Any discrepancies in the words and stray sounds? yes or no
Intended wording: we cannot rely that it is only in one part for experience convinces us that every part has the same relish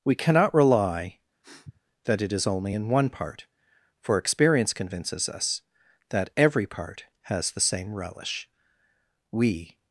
yes